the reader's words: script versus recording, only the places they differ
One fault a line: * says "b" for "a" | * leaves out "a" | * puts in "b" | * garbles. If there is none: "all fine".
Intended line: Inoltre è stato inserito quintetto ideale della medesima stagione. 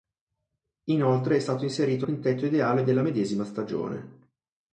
all fine